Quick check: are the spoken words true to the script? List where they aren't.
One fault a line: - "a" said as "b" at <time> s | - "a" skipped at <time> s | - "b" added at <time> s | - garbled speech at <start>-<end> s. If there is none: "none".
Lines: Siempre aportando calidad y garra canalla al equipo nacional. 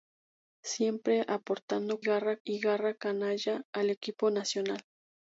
- "calidad" said as "garra" at 2.0 s